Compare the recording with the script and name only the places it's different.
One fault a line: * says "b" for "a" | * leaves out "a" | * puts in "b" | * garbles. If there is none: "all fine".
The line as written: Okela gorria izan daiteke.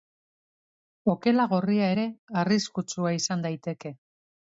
* puts in "ere arriskutsua"